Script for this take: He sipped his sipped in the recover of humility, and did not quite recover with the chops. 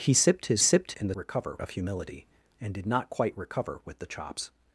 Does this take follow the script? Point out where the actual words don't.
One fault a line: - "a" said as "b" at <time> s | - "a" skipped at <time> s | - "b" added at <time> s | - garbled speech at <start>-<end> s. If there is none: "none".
none